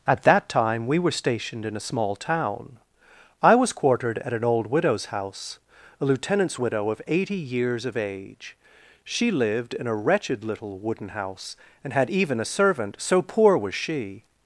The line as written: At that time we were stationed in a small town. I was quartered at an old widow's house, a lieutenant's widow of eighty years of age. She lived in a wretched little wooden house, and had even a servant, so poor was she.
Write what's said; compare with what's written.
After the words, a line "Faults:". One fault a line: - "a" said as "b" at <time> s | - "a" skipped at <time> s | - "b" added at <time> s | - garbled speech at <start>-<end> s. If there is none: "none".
At that time we were stationed in a small town. I was quartered at an old widow's house, a lieutenant's widow of eighty years of age. She lived in a wretched little wooden house, and had even a servant, so poor was she.
Faults:
none